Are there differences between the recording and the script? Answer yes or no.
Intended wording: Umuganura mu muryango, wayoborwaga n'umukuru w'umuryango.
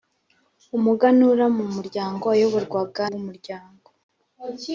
yes